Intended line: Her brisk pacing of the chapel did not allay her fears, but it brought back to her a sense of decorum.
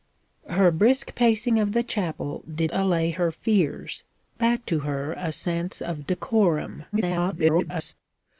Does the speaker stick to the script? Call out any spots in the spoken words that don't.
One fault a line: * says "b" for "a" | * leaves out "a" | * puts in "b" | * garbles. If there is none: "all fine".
* leaves out "not"
* leaves out "but it brought"
* garbles